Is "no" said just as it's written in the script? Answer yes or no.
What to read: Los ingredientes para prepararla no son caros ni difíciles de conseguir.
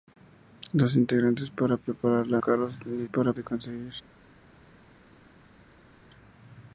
no